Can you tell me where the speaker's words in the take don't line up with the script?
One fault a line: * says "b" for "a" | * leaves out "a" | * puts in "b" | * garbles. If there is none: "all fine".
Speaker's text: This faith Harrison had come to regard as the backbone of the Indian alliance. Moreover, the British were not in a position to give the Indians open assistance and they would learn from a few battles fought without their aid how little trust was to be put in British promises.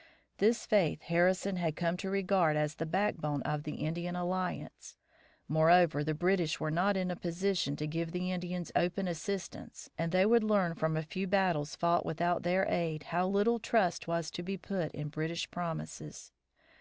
all fine